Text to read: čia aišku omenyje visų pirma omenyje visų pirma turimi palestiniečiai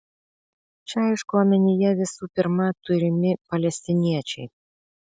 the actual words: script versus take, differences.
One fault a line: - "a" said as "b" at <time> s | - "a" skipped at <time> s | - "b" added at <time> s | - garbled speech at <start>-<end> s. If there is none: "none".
- "omenyje visų pirma" skipped at 2.7 s